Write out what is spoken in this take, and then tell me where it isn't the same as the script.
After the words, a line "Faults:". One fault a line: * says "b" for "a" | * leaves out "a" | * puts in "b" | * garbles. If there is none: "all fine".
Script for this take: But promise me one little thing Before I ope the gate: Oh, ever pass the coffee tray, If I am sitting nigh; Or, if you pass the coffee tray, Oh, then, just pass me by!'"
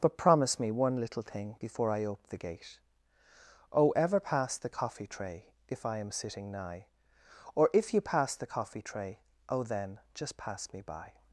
But promise me one little thing Before I ope the gate: Oh, ever pass the coffee tray, If I am sitting nigh; Or, if you pass the coffee tray, Oh, then, just pass me by!'"
Faults:
all fine